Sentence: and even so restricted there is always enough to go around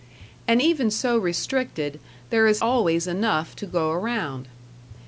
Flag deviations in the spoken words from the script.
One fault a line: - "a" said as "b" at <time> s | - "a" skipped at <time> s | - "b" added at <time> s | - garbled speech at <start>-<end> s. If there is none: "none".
none